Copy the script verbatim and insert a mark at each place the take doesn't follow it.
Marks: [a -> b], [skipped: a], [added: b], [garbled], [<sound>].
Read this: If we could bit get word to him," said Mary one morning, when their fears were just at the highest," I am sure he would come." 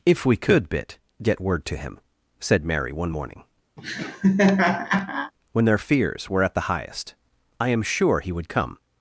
If we could bit get word to him," said Mary one morning, [laugh] when their fears were [skipped: just] at the highest," I am sure he would come."